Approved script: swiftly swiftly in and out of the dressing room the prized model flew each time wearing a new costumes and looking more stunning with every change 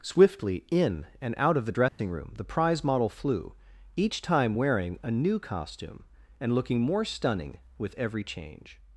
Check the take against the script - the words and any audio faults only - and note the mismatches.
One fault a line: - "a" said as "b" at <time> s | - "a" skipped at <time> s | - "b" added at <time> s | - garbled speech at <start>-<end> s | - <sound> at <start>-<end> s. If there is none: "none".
- "swiftly" skipped at 0.7 s
- dropout at 1.9-2.0 s
- "prized" said as "prize" at 2.4 s
- "costumes" said as "costume" at 5.4 s